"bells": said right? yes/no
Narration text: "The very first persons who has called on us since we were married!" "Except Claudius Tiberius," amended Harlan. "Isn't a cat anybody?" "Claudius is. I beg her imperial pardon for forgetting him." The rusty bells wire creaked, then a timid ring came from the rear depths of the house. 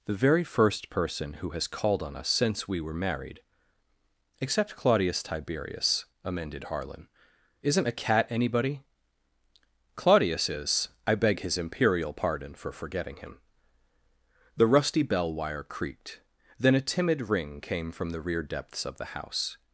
no